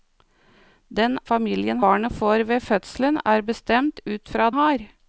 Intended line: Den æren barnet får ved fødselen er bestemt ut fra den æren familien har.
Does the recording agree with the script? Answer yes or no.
no